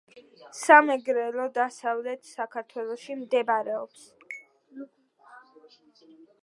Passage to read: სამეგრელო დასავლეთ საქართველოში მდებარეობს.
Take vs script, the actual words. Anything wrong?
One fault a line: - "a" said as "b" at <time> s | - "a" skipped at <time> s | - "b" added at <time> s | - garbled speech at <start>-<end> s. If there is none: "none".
none